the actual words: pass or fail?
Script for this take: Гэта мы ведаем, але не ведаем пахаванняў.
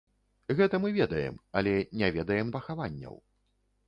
pass